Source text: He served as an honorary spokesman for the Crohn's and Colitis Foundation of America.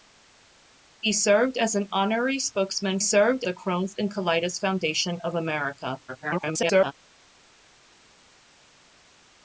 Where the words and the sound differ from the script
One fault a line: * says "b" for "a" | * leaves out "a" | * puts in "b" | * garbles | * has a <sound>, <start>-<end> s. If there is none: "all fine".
* says "served" for "for"
* garbles